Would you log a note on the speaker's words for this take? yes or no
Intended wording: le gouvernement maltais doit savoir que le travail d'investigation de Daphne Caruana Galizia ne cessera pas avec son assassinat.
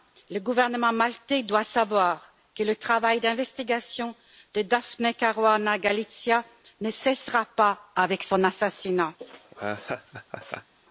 no